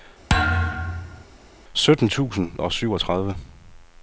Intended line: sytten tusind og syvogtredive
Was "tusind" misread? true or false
false